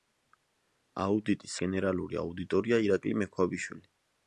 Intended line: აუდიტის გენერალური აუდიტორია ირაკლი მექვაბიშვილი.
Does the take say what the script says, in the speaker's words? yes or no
yes